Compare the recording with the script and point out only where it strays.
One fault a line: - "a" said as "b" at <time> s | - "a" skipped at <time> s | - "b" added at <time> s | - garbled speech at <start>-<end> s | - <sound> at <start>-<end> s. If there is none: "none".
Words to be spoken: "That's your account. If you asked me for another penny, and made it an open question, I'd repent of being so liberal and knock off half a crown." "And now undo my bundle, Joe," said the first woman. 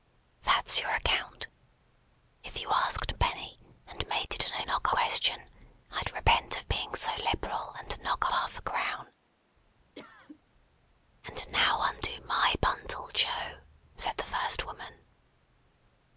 - "me for another" skipped at 3.1 s
- "open" said as "knock" at 4.7 s
- "off" skipped at 8.3 s
- cough at 10.0-10.4 s